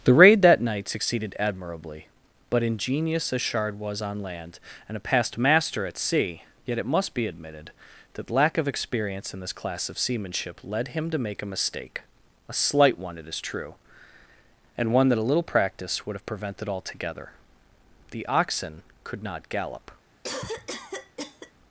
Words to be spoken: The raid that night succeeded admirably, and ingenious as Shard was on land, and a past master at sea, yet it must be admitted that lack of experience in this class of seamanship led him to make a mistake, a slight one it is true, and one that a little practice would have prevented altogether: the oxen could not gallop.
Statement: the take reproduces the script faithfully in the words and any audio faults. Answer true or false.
false